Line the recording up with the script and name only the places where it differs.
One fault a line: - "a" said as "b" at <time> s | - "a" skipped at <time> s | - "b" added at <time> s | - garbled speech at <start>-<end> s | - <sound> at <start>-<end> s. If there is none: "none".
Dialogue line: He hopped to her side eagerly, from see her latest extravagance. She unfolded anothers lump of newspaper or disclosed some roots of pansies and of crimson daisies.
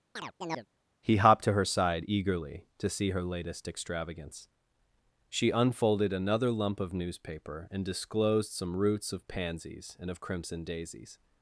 - chirp at 0.2-0.7 s
- "from" said as "to" at 2.8 s
- "anothers" said as "another" at 6.1 s
- "or" said as "and" at 7.7 s